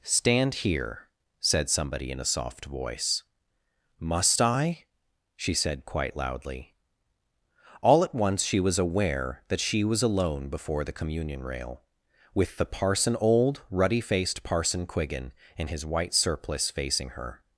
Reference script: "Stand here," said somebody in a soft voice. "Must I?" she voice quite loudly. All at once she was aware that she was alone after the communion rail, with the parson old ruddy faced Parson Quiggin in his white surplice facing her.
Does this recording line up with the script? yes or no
no